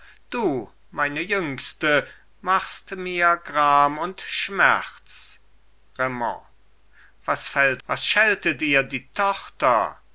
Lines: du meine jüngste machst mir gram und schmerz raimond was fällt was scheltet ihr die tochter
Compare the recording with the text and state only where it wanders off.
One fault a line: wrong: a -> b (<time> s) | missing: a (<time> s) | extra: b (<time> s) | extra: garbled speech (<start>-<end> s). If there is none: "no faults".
no faults